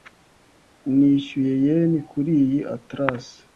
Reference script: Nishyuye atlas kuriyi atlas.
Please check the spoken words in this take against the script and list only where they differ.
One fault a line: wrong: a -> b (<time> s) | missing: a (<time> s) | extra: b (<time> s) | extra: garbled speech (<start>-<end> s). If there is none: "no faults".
wrong: atlas -> yen (1.6 s)